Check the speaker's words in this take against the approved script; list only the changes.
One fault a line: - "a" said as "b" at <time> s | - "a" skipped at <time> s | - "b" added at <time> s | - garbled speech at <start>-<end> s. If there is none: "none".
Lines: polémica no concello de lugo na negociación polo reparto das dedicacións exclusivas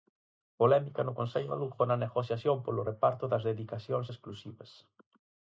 none